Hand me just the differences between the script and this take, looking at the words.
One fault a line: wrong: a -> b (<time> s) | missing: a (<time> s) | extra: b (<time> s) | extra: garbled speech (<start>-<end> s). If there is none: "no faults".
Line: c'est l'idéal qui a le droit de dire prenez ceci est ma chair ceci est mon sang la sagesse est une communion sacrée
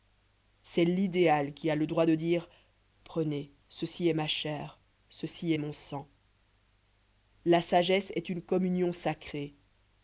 no faults